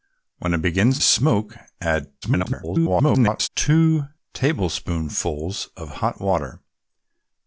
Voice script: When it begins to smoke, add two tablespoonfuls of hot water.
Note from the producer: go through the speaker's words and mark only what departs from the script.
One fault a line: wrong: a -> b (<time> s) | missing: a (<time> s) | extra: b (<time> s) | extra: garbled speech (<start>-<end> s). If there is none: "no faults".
missing: to (1.0 s)
extra: garbled speech (2.2-3.5 s)